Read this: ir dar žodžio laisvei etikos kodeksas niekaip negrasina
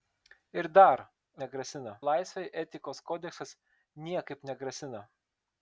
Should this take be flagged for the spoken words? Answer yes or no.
yes